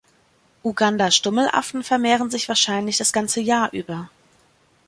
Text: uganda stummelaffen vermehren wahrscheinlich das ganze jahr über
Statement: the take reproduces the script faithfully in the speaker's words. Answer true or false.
false